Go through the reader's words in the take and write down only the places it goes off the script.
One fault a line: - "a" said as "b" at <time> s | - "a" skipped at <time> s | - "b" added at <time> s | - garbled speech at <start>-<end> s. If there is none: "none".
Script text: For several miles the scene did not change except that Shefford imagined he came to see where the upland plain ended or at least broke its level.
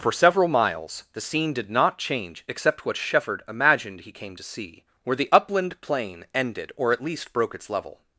- "that" said as "what" at 2.9 s